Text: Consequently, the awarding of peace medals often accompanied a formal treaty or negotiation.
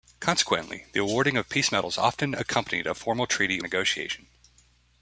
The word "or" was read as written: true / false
false